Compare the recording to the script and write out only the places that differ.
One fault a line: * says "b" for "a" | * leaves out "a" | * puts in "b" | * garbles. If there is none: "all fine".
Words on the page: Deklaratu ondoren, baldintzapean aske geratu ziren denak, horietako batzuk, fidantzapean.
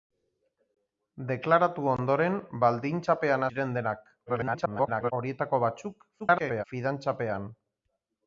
* leaves out "aske geratu"
* garbles
* garbles